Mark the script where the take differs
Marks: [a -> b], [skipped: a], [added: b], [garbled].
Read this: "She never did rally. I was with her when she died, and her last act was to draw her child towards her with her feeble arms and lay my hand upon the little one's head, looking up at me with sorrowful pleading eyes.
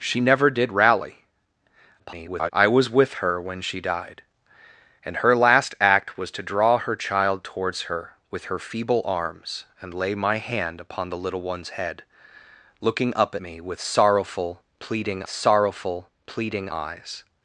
"She never did rally. [garbled] I was with her when she died, and her last act was to draw her child towards her with her feeble arms and lay my hand upon the little one's head, looking up [skipped: at] me with sorrowful pleading [added: sorrowful pleading] eyes.